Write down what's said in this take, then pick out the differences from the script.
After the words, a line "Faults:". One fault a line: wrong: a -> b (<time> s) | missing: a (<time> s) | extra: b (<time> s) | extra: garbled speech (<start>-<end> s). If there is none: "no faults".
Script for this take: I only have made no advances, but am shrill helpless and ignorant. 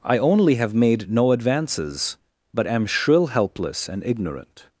I only have made no advances, but am shrill helpless and ignorant.
Faults:
no faults